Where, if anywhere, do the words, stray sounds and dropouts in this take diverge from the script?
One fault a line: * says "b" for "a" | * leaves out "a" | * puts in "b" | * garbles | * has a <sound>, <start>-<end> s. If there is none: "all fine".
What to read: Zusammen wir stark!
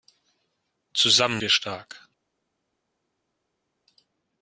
all fine